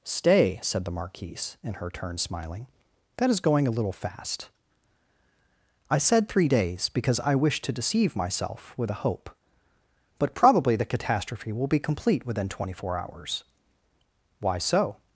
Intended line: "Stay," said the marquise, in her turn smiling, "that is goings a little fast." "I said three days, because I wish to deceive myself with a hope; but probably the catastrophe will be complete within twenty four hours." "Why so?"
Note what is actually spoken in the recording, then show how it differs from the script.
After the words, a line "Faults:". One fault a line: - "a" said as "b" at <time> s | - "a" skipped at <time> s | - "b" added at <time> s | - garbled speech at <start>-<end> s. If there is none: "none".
"Stay," said the marquise, in her turn smiling, "that is going a little fast." "I said three days, because I wish to deceive myself with a hope; but probably the catastrophe will be complete within twenty four hours." "Why so?"
Faults:
- "goings" said as "going" at 3.4 s